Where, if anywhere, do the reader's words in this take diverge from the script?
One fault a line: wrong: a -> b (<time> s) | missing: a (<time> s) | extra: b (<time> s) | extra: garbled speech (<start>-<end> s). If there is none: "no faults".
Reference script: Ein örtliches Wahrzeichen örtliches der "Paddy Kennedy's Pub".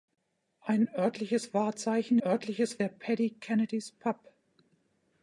no faults